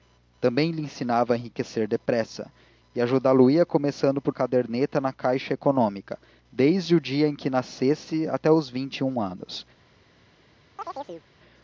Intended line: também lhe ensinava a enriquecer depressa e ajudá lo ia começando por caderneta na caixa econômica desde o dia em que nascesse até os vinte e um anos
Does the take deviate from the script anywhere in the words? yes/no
no